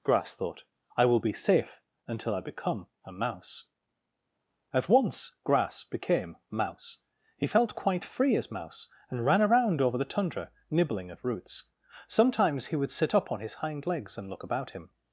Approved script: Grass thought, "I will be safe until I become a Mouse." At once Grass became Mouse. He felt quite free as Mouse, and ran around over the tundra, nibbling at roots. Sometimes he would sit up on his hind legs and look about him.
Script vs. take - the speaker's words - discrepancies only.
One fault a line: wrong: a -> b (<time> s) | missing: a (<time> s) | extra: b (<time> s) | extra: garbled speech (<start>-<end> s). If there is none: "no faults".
no faults